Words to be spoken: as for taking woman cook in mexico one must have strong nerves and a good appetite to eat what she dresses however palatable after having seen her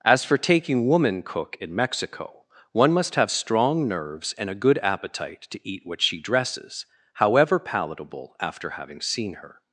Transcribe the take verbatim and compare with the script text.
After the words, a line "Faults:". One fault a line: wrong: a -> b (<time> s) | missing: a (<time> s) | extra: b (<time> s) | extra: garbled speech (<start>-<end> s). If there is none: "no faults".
as for taking woman cook in mexico one must have strong nerves and a good appetite to eat what she dresses however palatable after having seen her
Faults:
no faults